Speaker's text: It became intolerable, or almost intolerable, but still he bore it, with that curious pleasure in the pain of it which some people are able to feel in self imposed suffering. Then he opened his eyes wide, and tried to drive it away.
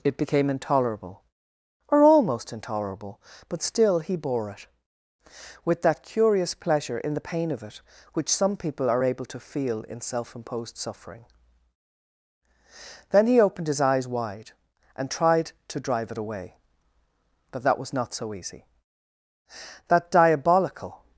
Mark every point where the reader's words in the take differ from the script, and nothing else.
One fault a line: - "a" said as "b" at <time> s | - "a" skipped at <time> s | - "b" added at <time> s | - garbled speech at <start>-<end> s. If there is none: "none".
- "But that was not so easy That diabolical" added at 17.5 s